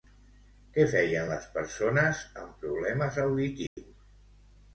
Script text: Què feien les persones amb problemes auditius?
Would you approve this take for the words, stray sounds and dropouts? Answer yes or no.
no